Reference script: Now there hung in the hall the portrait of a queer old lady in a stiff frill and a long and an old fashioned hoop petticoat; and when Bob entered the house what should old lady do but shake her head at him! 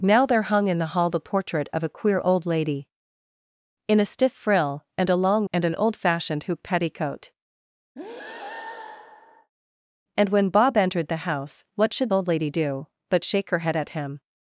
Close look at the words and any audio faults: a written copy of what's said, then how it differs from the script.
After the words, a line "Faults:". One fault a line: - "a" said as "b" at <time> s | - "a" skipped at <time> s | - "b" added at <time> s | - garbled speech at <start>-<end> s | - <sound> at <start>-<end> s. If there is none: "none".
Now there hung in the hall the portrait of a queer old lady in a stiff frill and a long and an old fashioned hoop petticoat; and when Bob entered the house what should old lady do but shake her head at him!
Faults:
- breath at 8.0-9.5 s